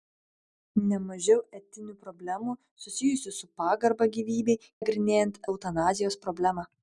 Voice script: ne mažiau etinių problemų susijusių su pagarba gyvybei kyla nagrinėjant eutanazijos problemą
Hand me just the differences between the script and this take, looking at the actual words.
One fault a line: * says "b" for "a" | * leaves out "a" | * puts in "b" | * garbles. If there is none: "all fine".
* leaves out "kyla"